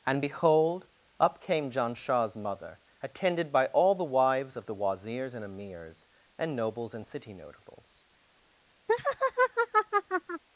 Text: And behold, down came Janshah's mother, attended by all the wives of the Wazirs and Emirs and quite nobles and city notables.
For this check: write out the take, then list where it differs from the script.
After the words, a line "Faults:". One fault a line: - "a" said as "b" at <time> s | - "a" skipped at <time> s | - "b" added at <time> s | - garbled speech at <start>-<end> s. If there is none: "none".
And behold, up came Janshah's mother, attended by all the wives of the Wazirs and Emirs and nobles and city notables.
Faults:
- "down" said as "up" at 1.2 s
- "quite" skipped at 6.6 s